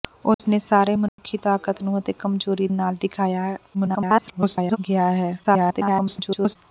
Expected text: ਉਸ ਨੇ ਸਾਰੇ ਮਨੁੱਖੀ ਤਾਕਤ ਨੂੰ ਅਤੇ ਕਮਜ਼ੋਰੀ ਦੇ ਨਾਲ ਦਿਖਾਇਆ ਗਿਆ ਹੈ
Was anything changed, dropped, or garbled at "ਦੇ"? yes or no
yes